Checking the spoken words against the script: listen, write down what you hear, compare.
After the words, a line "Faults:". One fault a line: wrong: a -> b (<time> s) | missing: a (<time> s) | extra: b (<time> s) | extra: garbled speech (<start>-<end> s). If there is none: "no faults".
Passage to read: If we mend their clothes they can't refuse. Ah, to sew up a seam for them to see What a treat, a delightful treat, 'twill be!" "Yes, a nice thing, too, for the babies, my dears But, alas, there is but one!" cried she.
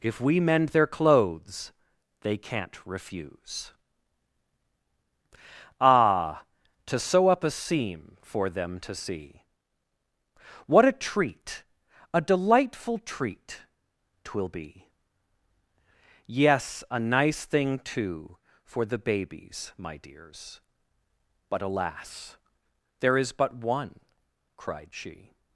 If we mend their clothes they can't refuse. Ah, to sew up a seam for them to see What a treat, a delightful treat, 'twill be!" "Yes, a nice thing, too, for the babies, my dears But, alas, there is but one!" cried she.
Faults:
no faults